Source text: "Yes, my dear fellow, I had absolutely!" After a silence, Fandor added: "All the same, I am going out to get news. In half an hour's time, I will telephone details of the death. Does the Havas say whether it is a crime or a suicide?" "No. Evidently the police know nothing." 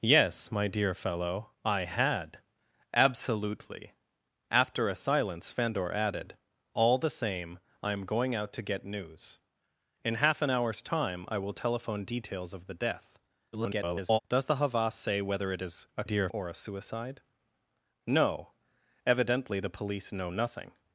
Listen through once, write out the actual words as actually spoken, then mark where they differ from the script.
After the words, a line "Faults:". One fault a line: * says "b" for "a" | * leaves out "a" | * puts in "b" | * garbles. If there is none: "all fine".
"Yes, my dear fellow, I had absolutely!" After a silence, Fandor added: "All the same, I am going out to get news. In half an hour's time, I will telephone details of the death. [garbled] Does the Havas say whether it is a dear or a suicide?" "No. Evidently the police know nothing."
Faults:
* garbles
* says "dear" for "crime"